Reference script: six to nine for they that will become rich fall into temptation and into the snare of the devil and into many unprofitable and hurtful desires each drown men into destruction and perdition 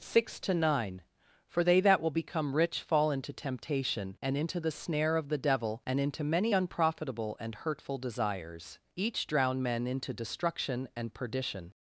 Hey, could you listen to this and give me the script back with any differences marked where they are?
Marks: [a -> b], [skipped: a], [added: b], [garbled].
six to nine for they that will become rich fall into temptation and into the snare of the devil and into many unprofitable and hurtful desires each drown men into destruction and perdition